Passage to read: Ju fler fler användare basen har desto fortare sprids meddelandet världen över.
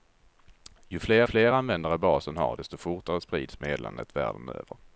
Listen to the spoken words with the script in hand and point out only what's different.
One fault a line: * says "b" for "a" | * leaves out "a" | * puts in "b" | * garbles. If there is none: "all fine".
all fine